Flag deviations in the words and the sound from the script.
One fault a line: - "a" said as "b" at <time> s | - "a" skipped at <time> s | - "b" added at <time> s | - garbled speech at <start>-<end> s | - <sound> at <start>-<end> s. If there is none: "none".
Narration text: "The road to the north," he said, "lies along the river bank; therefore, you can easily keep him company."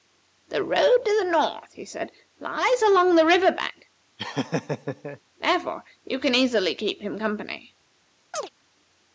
- laugh at 4.2-5.2 s
- chirp at 8.3-8.5 s